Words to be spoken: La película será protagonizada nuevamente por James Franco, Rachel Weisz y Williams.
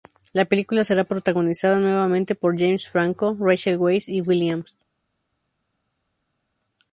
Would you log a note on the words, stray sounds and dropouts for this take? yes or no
no